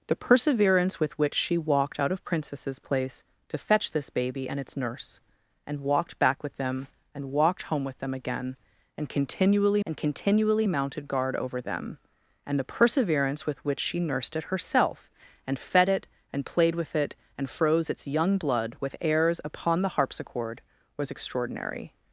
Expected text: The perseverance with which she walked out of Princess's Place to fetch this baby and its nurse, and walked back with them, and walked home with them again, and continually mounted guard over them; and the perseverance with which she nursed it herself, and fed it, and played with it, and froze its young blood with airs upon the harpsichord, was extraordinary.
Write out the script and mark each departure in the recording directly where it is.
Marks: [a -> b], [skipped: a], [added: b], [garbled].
The perseverance with which she walked out of Princess's Place to fetch this baby and its nurse, and walked back with them, and walked home with them again, and continually [added: and continually] mounted guard over them; and the perseverance with which she nursed it herself, and fed it, and played with it, and froze its young blood with airs upon the harpsichord, was extraordinary.